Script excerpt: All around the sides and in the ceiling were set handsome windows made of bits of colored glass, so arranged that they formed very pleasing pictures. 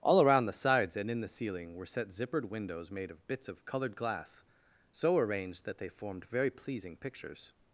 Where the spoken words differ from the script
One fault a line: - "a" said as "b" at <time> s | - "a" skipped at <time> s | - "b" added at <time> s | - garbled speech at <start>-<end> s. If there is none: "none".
- "handsome" said as "zippered" at 2.1 s